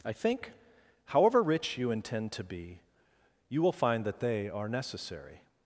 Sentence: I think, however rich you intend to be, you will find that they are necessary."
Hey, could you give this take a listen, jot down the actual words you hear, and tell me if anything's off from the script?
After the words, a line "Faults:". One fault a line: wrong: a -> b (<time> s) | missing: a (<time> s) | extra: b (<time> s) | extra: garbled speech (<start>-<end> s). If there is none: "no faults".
I think, however rich you intend to be, you will find that they are necessary."
Faults:
no faults